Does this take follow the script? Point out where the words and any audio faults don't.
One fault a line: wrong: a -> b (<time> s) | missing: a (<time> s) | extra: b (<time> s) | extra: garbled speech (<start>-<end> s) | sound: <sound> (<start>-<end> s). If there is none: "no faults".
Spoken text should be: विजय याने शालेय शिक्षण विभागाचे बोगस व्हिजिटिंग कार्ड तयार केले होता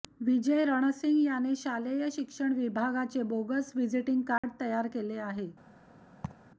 extra: रणसिंग (0.7 s)
sound: dropout (4.4-4.4 s)
wrong: होता -> आहे (5.2 s)
sound: laugh (6.2-6.5 s)